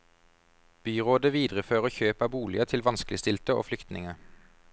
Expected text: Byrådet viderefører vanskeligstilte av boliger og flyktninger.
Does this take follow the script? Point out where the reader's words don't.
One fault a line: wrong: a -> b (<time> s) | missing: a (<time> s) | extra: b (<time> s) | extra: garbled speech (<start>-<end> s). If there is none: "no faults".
wrong: vanskeligstilte -> kjøp (1.9 s)
extra: til vanskeligstilte (2.7 s)